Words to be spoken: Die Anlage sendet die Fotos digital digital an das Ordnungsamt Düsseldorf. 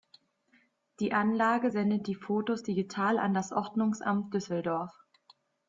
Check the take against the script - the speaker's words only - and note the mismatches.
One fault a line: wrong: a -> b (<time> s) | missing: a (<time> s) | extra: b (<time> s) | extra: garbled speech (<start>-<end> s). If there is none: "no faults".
missing: digital (3.2 s)